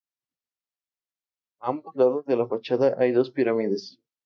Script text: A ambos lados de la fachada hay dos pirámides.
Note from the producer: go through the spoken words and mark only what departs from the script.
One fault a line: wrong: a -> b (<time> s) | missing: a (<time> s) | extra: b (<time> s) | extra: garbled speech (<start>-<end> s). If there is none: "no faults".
no faults